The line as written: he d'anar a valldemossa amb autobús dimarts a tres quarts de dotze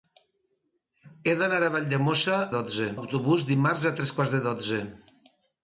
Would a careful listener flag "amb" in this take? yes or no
yes